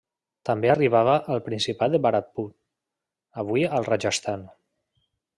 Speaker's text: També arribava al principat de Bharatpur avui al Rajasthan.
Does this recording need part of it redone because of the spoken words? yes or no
no